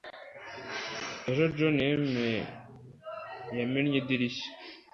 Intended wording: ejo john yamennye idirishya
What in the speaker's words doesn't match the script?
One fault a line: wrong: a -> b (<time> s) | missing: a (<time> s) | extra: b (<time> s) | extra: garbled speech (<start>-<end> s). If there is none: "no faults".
no faults